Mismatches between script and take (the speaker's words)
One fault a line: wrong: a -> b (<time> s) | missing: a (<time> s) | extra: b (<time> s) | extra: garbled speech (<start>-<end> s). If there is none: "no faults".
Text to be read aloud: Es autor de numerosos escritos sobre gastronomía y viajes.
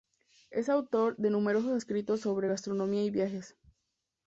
no faults